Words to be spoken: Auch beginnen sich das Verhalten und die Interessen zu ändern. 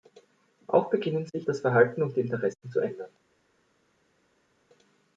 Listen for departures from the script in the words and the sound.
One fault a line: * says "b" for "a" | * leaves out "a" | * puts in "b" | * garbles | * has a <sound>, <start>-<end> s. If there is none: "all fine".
all fine